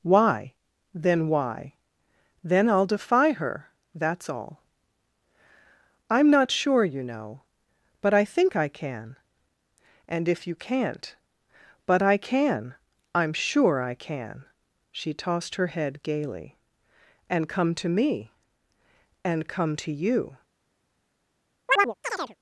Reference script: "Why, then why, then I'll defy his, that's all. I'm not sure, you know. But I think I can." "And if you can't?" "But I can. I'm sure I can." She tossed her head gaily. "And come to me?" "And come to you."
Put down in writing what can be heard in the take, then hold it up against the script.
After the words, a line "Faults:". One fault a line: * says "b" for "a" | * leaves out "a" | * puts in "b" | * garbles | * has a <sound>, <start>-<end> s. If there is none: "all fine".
"Why, then why, then I'll defy her, that's all. I'm not sure, you know. But I think I can." "And if you can't?" "But I can. I'm sure I can." She tossed her head gaily. "And come to me?" "And come to you."
Faults:
* says "her" for "his"
* has a chirp, 21.7-22.4 s